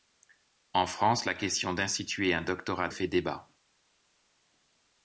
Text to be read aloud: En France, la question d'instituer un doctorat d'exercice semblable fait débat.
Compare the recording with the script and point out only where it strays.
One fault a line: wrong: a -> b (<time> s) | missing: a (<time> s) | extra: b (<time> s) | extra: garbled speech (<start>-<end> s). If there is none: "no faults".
missing: d'exercice semblable (2.9 s)